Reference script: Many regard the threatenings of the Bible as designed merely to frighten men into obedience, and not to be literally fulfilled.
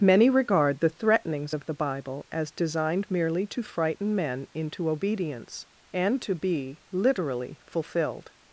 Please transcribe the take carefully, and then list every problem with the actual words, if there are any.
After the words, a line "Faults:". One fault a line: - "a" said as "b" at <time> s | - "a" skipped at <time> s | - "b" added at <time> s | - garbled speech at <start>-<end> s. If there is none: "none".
Many regard the threatenings of the Bible as designed merely to frighten men into obedience, and to be literally fulfilled.
Faults:
- "not" skipped at 6.2 s